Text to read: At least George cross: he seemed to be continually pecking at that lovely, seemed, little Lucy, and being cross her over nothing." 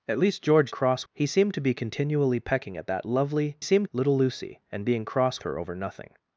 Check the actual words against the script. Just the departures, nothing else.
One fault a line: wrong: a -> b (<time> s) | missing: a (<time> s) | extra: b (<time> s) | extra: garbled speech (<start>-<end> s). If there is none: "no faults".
no faults